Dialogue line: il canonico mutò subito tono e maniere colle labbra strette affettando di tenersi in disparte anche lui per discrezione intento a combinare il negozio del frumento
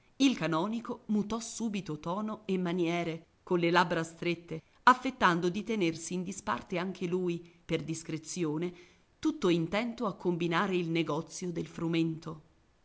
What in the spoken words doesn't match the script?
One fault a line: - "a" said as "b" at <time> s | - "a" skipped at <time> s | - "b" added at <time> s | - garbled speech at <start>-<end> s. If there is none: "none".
- "tutto" added at 9.2 s